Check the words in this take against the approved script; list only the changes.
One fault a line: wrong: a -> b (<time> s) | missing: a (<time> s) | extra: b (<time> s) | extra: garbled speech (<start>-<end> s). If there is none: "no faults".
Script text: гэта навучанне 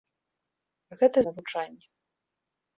no faults